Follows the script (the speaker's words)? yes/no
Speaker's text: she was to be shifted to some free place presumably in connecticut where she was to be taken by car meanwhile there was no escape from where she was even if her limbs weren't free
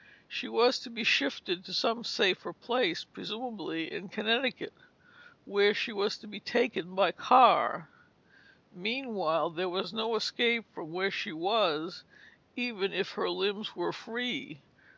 no